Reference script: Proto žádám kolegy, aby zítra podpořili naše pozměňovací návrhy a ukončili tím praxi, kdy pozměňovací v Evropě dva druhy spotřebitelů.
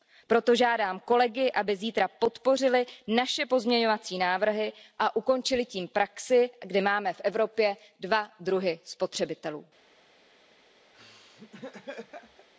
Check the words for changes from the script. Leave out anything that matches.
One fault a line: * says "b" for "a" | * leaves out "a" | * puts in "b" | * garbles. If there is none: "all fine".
* says "máme" for "pozměňovací"